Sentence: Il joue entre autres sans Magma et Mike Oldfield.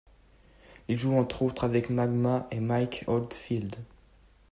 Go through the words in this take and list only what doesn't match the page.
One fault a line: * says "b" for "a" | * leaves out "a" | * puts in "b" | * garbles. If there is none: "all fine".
* says "avec" for "sans"